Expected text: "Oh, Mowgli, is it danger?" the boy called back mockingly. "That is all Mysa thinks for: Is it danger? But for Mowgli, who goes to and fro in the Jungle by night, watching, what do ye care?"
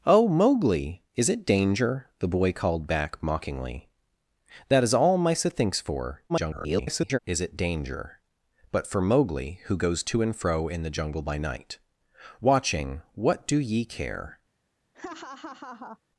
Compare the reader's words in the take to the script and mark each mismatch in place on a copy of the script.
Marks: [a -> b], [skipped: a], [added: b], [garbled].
"Oh, Mowgli, is it danger?" the boy called back mockingly. "That is all Mysa thinks for: [garbled] Is it danger? But for Mowgli, who goes to and fro in the Jungle by night, watching, what do ye care?"